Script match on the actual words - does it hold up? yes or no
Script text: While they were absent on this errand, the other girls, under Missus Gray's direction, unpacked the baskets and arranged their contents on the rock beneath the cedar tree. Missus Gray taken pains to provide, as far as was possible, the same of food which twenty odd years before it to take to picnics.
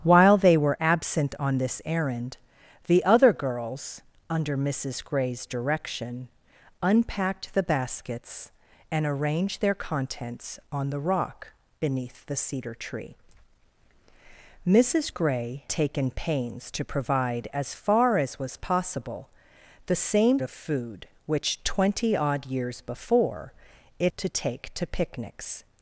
yes